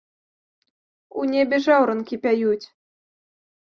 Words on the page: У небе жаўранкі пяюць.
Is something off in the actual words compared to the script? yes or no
no